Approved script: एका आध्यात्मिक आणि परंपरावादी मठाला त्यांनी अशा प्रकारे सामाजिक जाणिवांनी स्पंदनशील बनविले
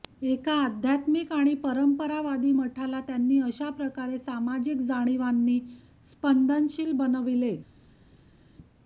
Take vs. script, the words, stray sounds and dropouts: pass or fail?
pass